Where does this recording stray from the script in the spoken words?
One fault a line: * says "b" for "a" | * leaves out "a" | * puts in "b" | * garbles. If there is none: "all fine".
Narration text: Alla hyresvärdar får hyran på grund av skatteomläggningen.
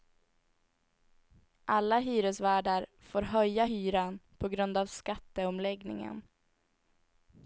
* puts in "höja"